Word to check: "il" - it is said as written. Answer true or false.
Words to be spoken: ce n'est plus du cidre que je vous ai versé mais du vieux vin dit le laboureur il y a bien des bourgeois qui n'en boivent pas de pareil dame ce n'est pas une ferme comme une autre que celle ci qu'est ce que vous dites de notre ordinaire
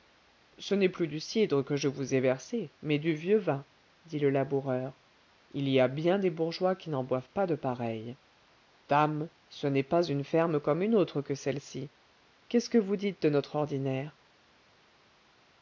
true